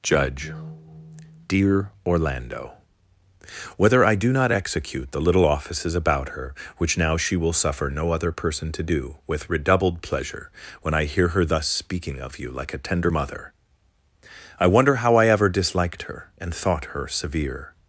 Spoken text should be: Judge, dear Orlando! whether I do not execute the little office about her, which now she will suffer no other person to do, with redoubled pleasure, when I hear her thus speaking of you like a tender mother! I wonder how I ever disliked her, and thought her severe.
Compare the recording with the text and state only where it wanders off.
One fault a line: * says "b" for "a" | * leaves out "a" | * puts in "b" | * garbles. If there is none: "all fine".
* says "offices" for "office"